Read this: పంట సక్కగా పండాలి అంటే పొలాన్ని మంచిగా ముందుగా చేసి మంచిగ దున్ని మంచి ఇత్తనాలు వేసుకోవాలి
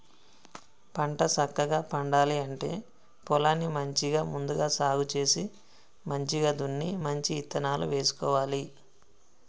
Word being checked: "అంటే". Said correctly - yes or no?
yes